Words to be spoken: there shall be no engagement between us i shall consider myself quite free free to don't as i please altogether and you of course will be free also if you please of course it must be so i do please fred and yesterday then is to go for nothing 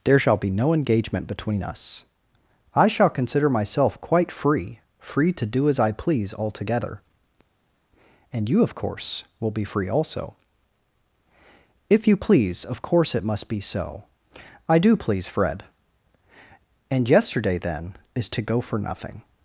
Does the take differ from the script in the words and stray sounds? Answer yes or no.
yes